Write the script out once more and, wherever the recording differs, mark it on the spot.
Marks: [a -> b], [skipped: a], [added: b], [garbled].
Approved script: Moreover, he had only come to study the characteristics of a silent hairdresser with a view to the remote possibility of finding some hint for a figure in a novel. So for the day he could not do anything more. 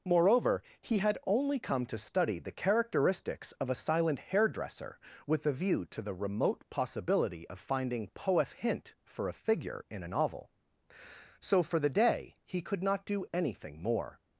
Moreover, he had only come to study the characteristics of a silent hairdresser with a view to the remote possibility of finding [some -> poef] hint for a figure in a novel. So for the day he could not do anything more.